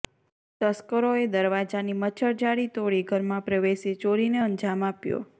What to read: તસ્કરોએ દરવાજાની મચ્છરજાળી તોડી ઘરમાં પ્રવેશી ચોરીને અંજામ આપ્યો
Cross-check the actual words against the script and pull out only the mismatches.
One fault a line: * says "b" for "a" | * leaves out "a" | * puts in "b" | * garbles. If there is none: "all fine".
all fine